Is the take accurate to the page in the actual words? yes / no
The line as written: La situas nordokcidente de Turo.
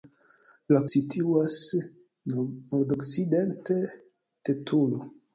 yes